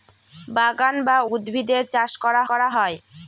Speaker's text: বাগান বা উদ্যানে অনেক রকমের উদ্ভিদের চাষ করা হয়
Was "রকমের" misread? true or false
true